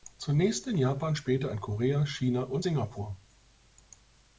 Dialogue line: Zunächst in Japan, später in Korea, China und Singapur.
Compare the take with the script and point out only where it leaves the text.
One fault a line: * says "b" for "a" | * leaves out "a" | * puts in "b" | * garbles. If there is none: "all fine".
all fine